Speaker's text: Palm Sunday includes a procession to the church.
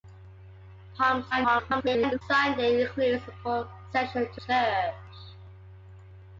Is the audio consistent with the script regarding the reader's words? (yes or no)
no